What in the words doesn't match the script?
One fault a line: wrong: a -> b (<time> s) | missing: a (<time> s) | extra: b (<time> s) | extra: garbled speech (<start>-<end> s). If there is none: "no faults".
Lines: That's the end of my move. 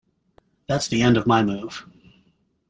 no faults